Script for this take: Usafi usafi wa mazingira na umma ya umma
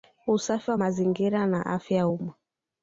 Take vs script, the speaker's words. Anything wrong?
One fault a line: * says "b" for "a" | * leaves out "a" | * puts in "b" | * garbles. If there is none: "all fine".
* leaves out "usafi"
* says "afya" for "umma"